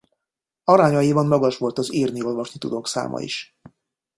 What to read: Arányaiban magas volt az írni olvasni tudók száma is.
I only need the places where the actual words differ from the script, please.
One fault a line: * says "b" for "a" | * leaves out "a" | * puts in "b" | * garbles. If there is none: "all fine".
all fine